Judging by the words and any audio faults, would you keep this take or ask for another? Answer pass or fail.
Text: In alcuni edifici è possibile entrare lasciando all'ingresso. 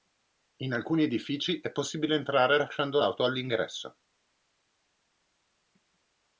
fail